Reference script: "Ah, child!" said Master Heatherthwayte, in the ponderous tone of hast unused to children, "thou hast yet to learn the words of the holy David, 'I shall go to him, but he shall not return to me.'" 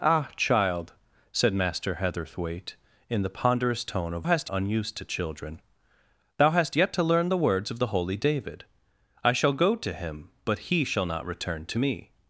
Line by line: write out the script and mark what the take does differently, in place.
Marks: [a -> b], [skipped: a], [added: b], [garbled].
"Ah, child!" said Master Heatherthwayte, in the ponderous tone of hast unused to children, "thou hast yet to learn the words of the holy David, 'I shall go to him, but he shall not return to me.'"